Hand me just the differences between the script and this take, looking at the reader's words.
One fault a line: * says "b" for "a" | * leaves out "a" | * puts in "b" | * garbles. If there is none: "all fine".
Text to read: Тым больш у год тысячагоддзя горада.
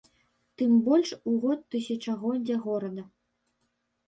all fine